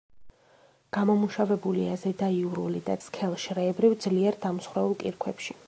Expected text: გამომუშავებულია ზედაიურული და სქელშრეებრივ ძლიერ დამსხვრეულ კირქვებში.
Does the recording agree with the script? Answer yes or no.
yes